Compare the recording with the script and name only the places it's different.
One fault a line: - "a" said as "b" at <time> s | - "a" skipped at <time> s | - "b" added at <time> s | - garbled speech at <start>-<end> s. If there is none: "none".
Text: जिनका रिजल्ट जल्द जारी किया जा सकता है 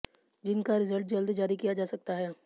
none